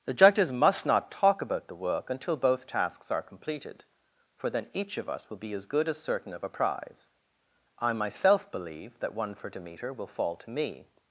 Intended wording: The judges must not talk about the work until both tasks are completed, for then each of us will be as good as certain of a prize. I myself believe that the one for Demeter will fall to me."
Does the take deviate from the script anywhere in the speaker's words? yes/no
yes